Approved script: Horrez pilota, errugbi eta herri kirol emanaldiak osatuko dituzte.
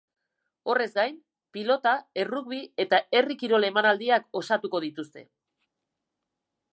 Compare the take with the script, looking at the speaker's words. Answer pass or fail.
fail